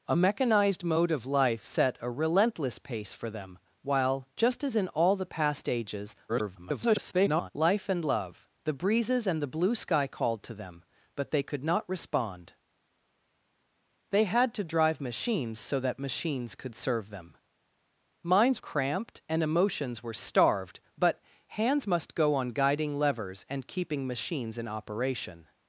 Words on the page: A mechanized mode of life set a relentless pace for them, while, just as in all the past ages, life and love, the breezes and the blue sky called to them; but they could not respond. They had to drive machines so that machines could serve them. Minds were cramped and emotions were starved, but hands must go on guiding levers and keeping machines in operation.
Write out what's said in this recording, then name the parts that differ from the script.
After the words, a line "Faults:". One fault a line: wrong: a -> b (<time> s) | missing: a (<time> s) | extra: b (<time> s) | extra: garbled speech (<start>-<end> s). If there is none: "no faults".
A mechanized mode of life set a relentless pace for them, while, just as in all the past ages, [garbled] life and love, the breezes and the blue sky called to them; but they could not respond. They had to drive machines so that machines could serve them. Minds cramped and emotions were starved, but hands must go on guiding levers and keeping machines in operation.
Faults:
extra: garbled speech (6.3-7.5 s)
missing: were (18.6 s)